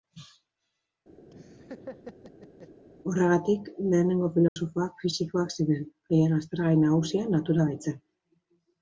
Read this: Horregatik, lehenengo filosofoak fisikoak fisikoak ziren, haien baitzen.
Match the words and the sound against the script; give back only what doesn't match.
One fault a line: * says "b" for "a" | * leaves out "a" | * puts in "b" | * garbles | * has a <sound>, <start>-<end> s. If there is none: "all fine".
* has a laugh, 1.3-2.8 s
* has a dropout, 4.5-4.6 s
* leaves out "fisikoak"
* puts in "aztergai nagusia natura"